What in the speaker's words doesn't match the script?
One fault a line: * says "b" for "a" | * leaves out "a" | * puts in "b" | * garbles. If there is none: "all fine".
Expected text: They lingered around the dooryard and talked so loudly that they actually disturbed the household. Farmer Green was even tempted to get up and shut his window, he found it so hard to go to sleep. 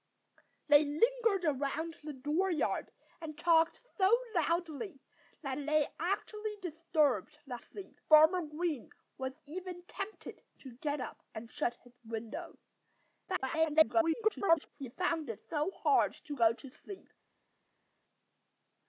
* says "sleep" for "household"
* garbles